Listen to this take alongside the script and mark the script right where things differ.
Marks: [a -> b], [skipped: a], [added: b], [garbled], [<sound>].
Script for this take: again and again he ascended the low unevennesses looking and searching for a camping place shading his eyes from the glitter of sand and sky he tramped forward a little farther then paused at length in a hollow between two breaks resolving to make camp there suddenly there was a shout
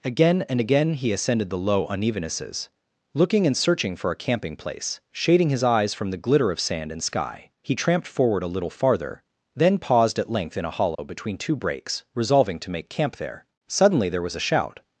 again and again he ascended the low unevennesses looking and searching for a camping place shading his eyes from the glitter of sand and sky he tramped forward a little farther then paused at length in a hollow [dropout] between two breaks resolving to make camp there suddenly there was a shout